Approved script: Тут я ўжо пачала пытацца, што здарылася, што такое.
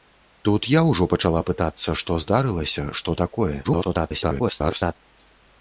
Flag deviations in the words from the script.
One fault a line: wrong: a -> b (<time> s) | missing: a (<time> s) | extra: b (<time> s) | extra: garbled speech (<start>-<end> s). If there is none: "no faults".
extra: garbled speech (3.6-5.0 s)